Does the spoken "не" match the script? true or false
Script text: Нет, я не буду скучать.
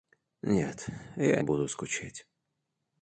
false